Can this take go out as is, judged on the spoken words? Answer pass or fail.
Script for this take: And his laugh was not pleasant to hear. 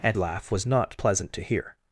fail